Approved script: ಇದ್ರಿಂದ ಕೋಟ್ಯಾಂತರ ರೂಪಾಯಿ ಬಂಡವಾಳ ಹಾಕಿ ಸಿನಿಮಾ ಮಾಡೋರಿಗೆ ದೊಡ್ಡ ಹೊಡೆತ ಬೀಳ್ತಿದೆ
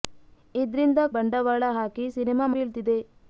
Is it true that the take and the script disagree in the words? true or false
true